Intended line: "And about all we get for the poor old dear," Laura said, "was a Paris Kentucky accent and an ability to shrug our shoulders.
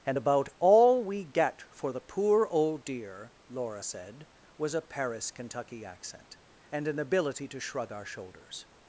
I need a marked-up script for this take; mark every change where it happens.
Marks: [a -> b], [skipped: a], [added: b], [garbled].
"And about all we get for the poor old dear," Laura said, "was a Paris Kentucky accent and an ability to shrug our shoulders.